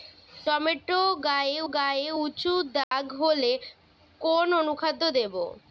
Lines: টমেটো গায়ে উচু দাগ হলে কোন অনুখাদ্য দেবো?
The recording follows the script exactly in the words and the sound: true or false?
false